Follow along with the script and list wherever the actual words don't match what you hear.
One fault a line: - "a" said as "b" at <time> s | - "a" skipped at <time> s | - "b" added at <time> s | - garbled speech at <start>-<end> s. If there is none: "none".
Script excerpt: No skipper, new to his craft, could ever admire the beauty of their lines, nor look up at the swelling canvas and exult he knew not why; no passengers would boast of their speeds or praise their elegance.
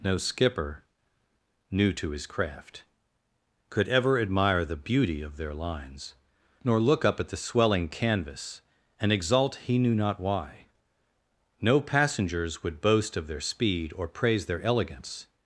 - "speeds" said as "speed" at 13.4 s